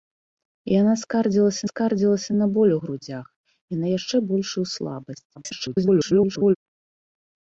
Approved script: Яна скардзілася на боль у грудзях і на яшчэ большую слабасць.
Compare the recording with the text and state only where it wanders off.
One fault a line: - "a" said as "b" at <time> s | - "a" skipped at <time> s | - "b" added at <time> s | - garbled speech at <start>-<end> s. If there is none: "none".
- "скардзілася" added at 1.7 s
- garbled speech at 5.4-6.6 s